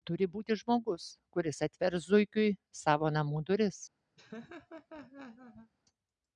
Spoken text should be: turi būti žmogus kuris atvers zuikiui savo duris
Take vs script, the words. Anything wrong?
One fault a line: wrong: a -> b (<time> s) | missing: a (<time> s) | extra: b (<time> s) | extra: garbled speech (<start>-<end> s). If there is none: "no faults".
extra: namų (3.2 s)